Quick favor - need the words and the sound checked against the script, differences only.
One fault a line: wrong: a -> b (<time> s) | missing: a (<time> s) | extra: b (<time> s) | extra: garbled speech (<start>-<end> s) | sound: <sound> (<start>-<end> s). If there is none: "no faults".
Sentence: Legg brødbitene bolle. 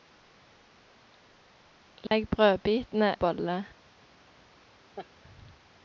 sound: dropout (2.1-2.1 s)
sound: laugh (5.0-5.1 s)